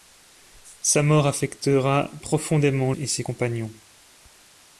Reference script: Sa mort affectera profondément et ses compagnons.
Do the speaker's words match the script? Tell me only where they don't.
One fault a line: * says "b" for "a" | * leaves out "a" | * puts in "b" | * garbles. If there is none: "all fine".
all fine